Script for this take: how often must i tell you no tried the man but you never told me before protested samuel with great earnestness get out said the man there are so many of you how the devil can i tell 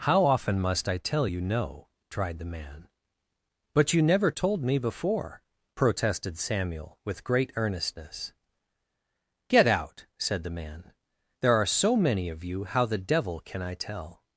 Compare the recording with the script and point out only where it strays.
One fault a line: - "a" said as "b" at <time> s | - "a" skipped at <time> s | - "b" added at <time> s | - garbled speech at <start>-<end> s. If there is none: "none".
none